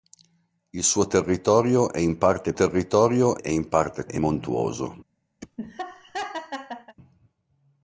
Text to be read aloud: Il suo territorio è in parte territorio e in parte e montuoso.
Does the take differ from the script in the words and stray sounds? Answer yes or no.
yes